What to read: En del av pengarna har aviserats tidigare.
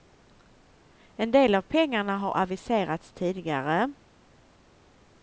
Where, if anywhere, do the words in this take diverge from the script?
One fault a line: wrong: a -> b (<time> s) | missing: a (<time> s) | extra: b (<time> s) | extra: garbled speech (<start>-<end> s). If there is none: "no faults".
no faults